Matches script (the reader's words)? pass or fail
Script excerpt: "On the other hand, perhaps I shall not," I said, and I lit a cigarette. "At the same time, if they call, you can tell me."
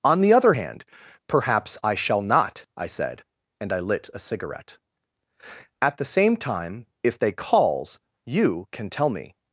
fail